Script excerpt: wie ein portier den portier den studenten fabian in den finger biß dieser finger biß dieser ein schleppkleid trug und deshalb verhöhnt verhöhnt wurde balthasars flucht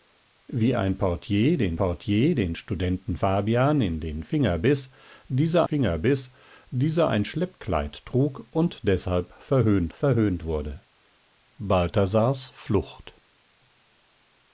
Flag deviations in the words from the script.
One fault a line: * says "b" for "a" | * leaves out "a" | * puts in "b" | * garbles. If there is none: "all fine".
all fine